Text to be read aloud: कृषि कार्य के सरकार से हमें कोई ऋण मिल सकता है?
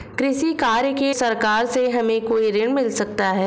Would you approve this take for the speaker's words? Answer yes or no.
yes